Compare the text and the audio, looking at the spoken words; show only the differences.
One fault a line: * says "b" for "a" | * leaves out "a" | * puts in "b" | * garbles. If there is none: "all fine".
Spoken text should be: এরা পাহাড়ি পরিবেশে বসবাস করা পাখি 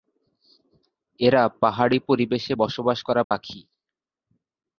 all fine